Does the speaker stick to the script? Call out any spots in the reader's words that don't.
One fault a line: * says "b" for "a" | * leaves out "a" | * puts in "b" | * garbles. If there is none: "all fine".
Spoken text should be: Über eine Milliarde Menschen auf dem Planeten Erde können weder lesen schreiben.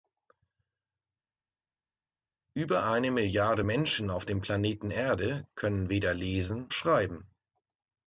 all fine